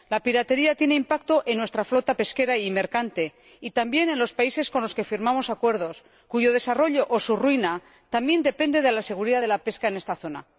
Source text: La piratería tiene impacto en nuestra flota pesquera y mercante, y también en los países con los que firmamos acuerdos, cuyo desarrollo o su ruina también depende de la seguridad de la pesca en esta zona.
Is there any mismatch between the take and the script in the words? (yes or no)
no